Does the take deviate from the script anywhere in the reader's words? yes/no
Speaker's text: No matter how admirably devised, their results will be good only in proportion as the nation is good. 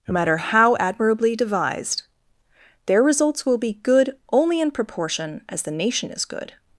no